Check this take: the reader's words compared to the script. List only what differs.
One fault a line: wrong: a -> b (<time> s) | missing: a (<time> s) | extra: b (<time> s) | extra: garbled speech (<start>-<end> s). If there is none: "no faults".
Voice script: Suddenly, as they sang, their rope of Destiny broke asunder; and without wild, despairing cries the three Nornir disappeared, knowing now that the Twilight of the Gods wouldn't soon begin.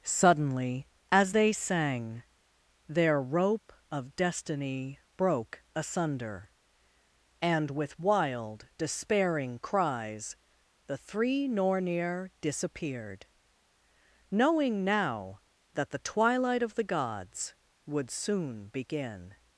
wrong: without -> with (7.7 s)
wrong: wouldn't -> would (17.8 s)